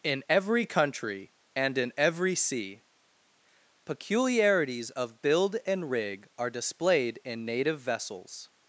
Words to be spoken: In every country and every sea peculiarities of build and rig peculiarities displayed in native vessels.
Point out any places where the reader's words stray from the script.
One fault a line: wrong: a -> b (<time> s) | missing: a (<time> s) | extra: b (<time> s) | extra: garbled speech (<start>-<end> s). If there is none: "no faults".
extra: in (1.8 s)
wrong: peculiarities -> are (6.4 s)